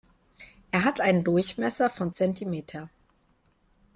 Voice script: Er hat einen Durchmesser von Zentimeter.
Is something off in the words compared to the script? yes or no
no